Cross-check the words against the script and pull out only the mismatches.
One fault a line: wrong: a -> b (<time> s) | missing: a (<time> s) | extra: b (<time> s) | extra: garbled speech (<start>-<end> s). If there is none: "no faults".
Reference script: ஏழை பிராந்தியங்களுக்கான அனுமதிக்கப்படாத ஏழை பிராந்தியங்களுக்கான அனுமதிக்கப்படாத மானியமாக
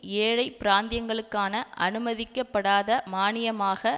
missing: ஏழை பிராந்தியங்களுக்கான அனுமதிக்கப்படாத (2.9 s)